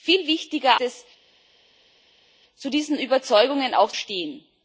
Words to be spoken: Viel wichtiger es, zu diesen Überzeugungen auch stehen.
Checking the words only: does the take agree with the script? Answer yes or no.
yes